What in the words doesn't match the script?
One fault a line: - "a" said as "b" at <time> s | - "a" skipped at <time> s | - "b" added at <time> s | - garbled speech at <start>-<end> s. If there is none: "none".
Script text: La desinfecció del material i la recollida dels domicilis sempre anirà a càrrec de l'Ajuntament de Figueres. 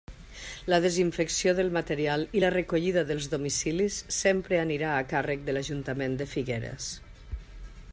none